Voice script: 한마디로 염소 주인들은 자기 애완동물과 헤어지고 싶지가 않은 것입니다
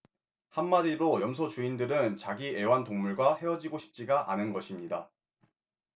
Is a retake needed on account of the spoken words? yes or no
no